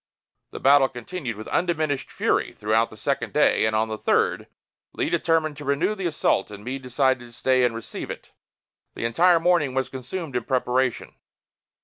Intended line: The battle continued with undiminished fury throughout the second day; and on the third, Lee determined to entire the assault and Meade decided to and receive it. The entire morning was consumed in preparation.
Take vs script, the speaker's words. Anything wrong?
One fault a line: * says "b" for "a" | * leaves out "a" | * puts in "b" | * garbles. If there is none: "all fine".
* says "renew" for "entire"
* puts in "stay"